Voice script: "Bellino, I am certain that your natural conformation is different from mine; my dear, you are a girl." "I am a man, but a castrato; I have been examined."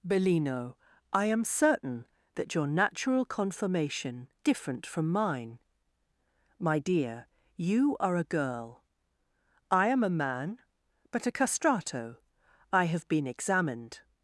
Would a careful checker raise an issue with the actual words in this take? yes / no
yes